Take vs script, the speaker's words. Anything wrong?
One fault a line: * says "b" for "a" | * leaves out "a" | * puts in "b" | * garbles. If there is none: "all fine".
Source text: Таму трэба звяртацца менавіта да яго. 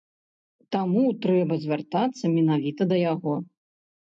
all fine